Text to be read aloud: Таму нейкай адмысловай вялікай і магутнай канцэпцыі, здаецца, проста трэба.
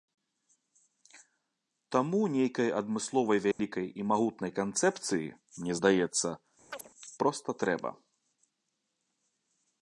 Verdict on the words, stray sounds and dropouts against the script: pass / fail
fail